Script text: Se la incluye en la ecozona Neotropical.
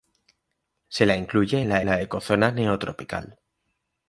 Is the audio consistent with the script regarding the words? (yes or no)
no